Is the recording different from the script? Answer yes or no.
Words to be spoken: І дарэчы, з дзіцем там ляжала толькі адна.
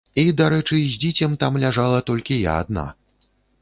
yes